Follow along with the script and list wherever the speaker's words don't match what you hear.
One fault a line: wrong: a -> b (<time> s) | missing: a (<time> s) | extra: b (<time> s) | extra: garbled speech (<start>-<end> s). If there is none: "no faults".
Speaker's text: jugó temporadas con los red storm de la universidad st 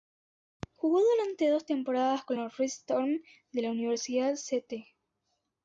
extra: durante dos (1.0 s)